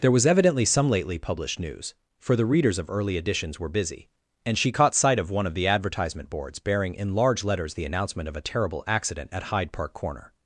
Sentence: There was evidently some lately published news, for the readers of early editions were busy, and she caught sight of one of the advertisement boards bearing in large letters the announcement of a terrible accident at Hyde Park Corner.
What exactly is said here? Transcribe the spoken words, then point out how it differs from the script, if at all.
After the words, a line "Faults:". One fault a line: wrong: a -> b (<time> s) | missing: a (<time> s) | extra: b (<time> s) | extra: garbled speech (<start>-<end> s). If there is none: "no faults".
There was evidently some lately published news, for the readers of early editions were busy, and she caught sight of one of the advertisement boards bearing in large letters the announcement of a terrible accident at Hyde Park Corner.
Faults:
no faults